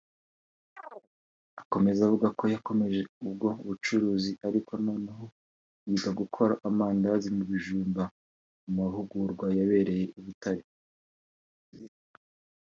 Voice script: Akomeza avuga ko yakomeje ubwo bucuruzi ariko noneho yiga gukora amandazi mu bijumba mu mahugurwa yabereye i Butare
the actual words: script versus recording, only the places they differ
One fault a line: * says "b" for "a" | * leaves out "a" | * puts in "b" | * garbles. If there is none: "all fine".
all fine